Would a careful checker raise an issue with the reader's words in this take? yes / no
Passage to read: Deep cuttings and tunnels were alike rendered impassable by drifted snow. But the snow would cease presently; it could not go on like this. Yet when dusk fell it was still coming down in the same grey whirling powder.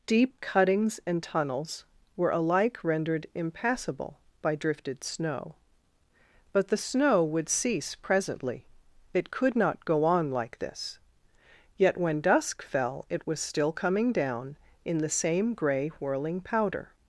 no